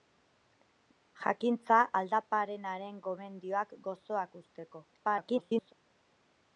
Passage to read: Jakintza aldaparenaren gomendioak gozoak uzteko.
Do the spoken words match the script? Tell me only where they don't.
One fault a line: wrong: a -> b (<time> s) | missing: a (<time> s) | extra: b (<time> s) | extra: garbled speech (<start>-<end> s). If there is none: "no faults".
extra: garbled speech (4.9-5.7 s)